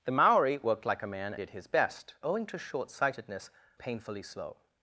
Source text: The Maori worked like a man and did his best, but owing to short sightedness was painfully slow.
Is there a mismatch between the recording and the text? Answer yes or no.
yes